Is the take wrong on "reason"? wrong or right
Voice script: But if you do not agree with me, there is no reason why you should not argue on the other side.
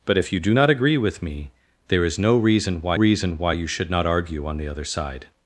right